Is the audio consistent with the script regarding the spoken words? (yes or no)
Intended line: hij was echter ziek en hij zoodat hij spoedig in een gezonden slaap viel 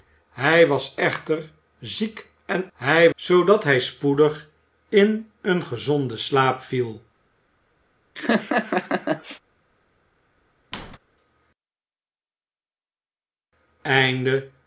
yes